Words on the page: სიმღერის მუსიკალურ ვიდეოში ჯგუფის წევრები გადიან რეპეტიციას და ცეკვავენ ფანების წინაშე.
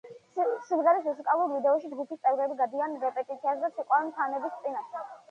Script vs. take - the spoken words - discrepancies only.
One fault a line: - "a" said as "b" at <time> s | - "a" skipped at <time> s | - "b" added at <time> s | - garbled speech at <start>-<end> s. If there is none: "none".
none